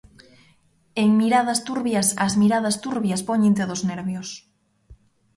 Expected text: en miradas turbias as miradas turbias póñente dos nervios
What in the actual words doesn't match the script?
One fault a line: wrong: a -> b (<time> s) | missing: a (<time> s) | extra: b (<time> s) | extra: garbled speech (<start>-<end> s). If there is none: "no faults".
no faults